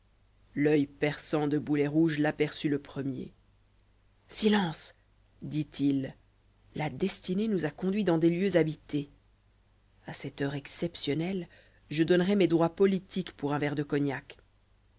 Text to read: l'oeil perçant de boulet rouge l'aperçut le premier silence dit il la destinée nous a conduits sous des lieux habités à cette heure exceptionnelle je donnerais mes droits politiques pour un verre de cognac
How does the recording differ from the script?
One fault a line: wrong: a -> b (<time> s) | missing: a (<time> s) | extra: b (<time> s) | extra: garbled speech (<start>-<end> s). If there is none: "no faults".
wrong: sous -> dans (8.0 s)